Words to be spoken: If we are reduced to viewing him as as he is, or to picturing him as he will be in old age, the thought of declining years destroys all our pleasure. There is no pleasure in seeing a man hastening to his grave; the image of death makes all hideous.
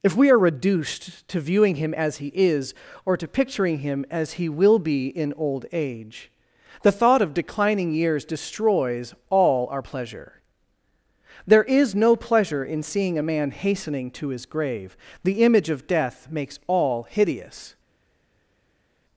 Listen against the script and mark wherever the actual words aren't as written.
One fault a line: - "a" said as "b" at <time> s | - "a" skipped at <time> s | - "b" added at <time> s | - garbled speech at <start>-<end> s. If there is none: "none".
- "as" skipped at 2.2 s